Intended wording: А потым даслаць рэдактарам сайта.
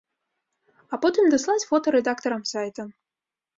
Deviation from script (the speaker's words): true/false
true